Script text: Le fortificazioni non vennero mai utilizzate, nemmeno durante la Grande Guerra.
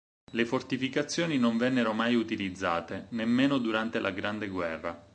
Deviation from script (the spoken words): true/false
false